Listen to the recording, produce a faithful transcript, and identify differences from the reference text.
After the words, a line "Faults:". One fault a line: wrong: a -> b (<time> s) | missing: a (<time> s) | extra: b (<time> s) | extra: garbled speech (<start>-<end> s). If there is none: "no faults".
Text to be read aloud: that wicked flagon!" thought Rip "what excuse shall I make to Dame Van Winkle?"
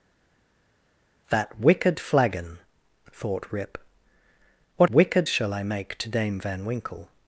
that wicked flagon!" thought Rip "what wicked shall I make to Dame Van Winkle?"
Faults:
wrong: excuse -> wicked (4.9 s)